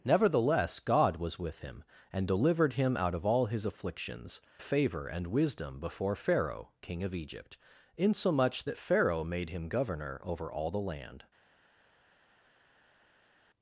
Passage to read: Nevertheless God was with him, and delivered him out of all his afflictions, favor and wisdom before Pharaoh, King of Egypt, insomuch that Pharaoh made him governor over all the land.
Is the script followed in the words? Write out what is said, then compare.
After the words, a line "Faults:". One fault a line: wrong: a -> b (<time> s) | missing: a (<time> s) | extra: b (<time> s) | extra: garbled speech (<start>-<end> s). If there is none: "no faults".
Nevertheless God was with him, and delivered him out of all his afflictions, favor and wisdom before Pharaoh, King of Egypt, insomuch that Pharaoh made him governor over all the land.
Faults:
no faults